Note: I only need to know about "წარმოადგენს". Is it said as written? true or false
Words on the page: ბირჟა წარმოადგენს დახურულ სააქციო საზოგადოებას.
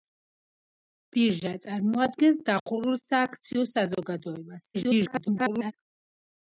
true